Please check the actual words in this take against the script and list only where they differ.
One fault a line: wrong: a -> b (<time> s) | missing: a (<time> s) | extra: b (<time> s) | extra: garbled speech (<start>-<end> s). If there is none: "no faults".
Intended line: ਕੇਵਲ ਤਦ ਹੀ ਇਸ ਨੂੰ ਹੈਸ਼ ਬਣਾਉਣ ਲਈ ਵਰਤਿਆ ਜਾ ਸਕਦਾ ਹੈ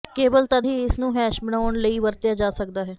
no faults